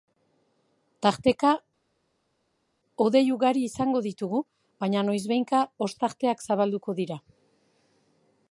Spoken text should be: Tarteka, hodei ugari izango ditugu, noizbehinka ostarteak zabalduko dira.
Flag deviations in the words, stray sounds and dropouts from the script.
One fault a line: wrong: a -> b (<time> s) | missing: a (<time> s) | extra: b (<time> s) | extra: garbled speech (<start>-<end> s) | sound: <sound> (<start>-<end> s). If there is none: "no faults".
extra: baina (4.8 s)